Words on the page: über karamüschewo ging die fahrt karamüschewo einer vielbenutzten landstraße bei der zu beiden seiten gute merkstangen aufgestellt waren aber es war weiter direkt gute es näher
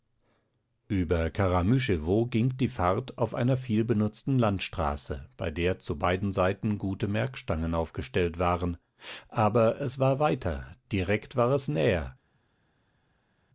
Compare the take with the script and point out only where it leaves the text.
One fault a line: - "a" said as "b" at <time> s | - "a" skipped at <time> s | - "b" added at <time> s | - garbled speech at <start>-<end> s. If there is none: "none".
- "karamüschewo" said as "auf" at 3.2 s
- "gute" said as "war" at 11.3 s